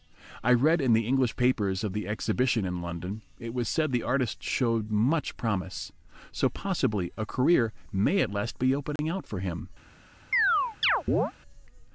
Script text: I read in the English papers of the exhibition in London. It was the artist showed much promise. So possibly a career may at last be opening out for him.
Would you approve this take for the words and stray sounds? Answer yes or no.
no